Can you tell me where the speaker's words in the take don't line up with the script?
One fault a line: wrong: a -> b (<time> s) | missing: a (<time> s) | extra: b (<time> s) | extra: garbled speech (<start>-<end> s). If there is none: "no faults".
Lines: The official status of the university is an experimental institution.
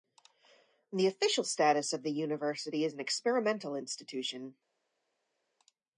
no faults